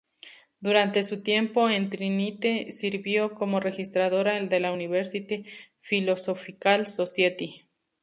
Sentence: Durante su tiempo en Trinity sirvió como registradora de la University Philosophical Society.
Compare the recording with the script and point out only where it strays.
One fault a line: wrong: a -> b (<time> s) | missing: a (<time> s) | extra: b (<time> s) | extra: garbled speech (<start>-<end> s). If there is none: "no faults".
no faults